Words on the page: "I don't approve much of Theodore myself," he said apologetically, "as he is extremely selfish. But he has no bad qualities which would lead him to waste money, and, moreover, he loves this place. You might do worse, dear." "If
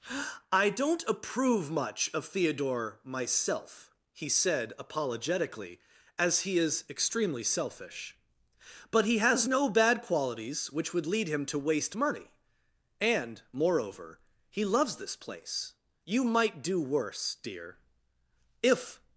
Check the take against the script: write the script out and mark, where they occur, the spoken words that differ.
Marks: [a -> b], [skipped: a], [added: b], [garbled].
"I don't approve much of Theodore myself," he said apologetically, "as he is extremely selfish. But he has no bad qualities which would lead him to waste money, and, moreover, he loves this place. You might do worse, dear." "If